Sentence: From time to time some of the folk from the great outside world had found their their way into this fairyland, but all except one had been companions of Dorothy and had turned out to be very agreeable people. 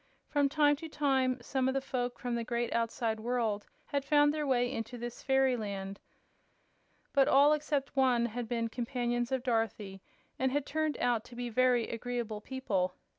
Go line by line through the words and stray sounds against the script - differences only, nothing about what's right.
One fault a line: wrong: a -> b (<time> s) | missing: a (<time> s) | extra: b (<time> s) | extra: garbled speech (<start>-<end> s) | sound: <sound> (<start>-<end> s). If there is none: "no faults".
missing: their (4.5 s)